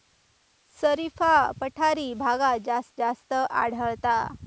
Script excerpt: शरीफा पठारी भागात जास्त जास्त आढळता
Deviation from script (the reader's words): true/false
false